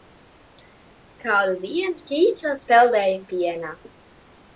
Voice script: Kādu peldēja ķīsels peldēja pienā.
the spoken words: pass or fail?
fail